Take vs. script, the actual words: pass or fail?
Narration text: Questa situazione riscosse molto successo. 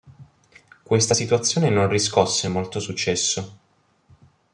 fail